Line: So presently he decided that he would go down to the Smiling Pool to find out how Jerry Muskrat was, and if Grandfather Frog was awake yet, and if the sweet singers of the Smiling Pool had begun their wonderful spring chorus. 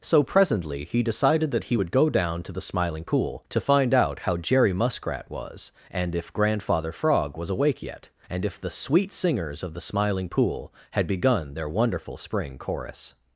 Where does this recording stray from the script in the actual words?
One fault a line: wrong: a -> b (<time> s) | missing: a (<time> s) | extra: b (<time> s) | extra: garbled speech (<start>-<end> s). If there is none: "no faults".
no faults